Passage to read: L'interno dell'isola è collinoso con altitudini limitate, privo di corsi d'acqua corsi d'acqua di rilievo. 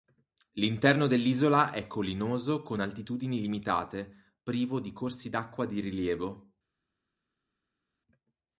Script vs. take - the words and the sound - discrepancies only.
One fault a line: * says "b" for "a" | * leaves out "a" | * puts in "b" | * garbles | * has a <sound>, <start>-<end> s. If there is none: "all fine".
* leaves out "corsi d'acqua"